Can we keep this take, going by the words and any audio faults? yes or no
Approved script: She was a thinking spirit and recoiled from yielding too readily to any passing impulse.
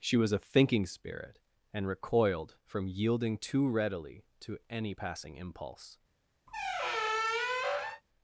no